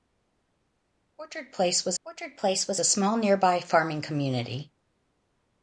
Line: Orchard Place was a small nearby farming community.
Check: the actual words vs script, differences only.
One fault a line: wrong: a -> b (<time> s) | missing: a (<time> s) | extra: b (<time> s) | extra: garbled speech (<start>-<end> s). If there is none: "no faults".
extra: orchard Place was (2.0 s)